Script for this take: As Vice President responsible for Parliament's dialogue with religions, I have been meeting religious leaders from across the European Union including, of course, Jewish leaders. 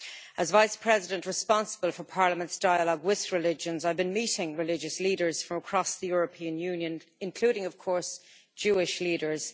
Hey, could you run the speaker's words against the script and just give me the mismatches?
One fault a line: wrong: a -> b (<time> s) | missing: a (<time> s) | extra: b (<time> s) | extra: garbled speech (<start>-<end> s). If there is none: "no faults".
no faults